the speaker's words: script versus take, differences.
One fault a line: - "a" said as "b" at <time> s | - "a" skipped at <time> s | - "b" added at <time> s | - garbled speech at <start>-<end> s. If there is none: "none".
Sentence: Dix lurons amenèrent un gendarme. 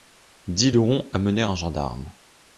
none